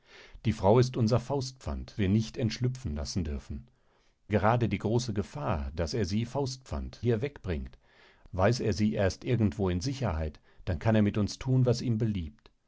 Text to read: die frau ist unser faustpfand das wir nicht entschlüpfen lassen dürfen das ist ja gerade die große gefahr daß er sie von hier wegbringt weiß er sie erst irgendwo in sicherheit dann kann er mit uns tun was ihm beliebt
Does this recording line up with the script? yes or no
no